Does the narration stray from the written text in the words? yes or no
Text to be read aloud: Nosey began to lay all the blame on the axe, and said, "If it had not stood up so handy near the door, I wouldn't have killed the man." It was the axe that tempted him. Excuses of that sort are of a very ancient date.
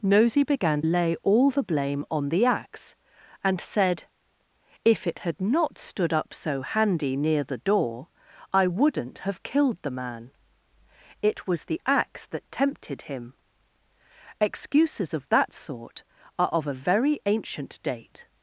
yes